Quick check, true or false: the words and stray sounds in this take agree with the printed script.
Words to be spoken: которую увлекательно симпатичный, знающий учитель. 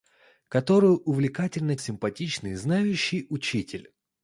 true